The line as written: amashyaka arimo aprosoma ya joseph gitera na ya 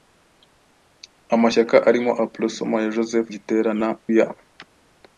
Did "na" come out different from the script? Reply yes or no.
no